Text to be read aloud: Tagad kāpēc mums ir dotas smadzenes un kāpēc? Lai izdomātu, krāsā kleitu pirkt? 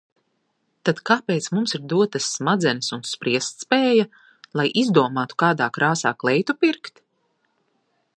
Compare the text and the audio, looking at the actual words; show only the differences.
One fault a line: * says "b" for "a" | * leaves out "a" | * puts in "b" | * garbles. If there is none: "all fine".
* says "Tad" for "Tagad"
* says "spriestspēja" for "kāpēc"
* puts in "kādā"